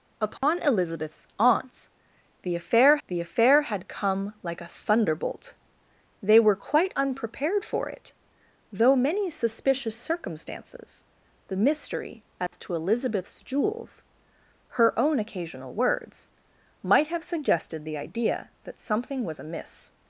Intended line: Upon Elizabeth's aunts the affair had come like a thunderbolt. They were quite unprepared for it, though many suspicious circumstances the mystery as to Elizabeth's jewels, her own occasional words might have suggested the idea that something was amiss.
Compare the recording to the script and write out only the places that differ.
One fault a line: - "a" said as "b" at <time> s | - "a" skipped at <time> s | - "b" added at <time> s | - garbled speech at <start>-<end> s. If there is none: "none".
- "the affair" added at 3.1 s